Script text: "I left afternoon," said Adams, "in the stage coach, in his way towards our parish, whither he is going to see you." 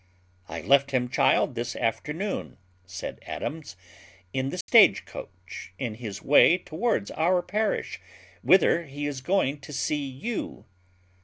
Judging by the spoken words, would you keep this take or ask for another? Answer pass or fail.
fail